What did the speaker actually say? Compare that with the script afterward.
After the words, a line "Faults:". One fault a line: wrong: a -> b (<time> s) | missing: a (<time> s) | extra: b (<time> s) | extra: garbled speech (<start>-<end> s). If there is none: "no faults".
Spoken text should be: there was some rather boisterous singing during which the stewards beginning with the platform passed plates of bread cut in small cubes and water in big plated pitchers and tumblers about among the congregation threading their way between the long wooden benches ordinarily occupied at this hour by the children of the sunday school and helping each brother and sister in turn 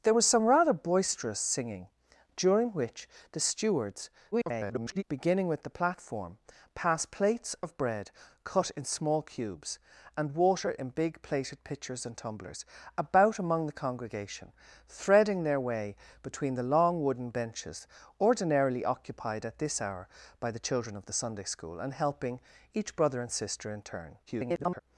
there was some rather boisterous singing during which the stewards [garbled] beginning with the platform passed plates of bread cut in small cubes and water in big plated pitchers and tumblers about among the congregation threading their way between the long wooden benches ordinarily occupied at this hour by the children of the sunday school and helping each brother and sister in turn [garbled]
Faults:
extra: garbled speech (4.3-5.0 s)
extra: garbled speech (24.3-24.8 s)